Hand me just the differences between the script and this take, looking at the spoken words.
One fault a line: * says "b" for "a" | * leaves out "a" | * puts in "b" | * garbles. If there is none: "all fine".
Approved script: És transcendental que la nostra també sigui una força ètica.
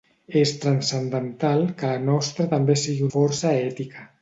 * leaves out "una"